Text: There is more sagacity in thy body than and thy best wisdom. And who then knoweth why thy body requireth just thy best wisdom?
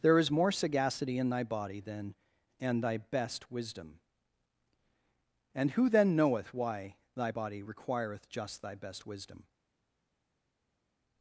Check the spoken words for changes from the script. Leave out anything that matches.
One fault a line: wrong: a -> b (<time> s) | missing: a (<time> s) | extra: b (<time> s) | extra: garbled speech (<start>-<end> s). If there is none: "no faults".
no faults